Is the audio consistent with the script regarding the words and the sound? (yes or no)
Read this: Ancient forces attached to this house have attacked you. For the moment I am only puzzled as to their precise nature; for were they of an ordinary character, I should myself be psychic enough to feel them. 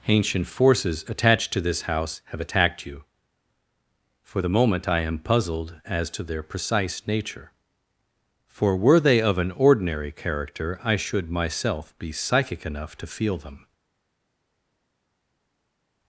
no